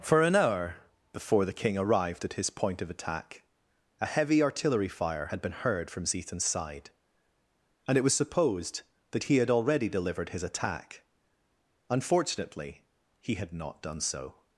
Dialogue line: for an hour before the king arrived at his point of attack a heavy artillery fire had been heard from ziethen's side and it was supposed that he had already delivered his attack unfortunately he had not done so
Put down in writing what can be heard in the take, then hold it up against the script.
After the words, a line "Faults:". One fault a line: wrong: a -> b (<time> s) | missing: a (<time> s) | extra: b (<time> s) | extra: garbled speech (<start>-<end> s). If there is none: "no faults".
for an hour before the king arrived at his point of attack a heavy artillery fire had been heard from ziethen's side and it was supposed that he had already delivered his attack unfortunately he had not done so
Faults:
no faults